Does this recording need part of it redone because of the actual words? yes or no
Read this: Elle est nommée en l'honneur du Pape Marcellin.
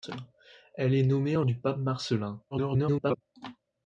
yes